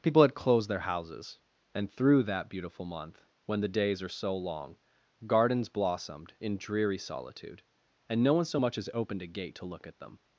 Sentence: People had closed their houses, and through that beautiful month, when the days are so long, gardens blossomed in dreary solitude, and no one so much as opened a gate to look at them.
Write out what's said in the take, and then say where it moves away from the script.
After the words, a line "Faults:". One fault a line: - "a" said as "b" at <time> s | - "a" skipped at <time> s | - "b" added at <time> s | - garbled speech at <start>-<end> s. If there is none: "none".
People had closed their houses, and through that beautiful month, when the days are so long, gardens blossomed in dreary solitude, and no one so much as opened a gate to look at them.
Faults:
none